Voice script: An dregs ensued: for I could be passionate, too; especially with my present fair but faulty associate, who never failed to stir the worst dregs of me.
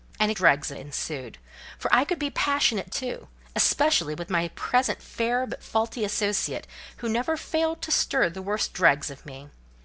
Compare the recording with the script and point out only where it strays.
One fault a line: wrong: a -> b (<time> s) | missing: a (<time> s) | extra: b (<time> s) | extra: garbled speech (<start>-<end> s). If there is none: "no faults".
no faults